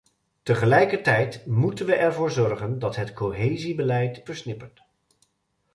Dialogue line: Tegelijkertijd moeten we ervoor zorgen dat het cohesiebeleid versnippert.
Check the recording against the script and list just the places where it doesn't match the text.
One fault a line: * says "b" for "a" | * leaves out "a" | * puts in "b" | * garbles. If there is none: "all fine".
all fine